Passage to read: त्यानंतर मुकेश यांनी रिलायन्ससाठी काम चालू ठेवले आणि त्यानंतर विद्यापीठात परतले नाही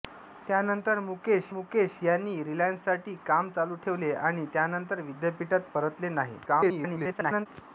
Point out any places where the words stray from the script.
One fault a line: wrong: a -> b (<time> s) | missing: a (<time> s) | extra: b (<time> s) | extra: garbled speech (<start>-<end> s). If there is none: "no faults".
extra: मुकेश (1.5 s)
extra: garbled speech (6.5-7.5 s)